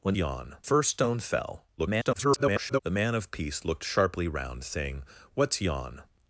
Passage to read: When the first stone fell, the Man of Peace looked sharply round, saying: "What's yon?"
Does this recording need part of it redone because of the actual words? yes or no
yes